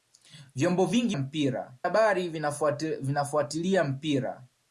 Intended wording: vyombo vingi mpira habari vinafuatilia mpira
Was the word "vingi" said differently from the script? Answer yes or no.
no